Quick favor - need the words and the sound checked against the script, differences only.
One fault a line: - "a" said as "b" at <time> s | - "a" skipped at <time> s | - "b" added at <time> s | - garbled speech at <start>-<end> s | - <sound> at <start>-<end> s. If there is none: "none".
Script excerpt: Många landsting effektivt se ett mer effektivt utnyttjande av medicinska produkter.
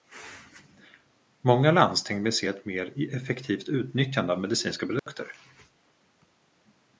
- "effektivt" said as "vill" at 2.2 s
- dropout at 5.0-5.1 s